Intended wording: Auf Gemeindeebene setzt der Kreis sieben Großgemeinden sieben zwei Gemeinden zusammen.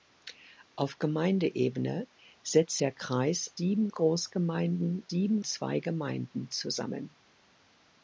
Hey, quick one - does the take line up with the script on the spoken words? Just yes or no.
yes